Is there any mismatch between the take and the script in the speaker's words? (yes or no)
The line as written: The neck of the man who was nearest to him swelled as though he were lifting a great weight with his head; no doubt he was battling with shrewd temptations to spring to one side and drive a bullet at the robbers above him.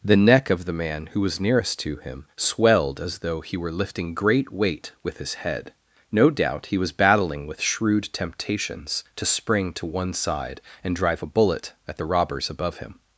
yes